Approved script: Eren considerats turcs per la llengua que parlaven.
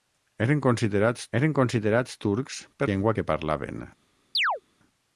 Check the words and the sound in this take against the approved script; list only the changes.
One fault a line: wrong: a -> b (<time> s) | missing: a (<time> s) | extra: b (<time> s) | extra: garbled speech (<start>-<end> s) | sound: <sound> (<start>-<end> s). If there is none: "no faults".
extra: eren considerats (1.4 s)
missing: la (2.9 s)
sound: chirp (4.3-4.6 s)